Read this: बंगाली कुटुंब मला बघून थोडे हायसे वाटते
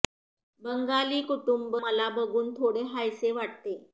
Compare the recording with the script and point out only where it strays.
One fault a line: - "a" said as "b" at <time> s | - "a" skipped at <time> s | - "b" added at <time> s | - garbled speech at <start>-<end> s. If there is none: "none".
none